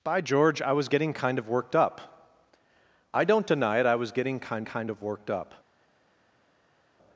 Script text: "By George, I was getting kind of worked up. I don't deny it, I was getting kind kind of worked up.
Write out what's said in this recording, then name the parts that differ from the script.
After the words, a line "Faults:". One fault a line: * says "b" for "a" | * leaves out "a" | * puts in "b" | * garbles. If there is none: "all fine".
"By George, I was getting kind of worked up. I don't deny it, I was getting kind kind of worked up.
Faults:
all fine